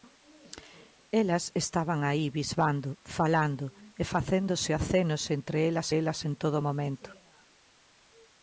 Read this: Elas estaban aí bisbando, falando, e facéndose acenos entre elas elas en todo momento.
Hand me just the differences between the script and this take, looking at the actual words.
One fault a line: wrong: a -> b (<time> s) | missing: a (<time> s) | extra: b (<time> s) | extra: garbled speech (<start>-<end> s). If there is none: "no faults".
no faults